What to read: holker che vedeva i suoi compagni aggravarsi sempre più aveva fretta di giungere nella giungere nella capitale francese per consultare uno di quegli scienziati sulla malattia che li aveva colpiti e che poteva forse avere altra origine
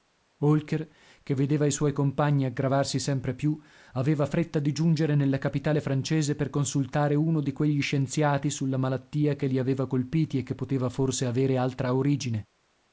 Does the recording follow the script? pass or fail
fail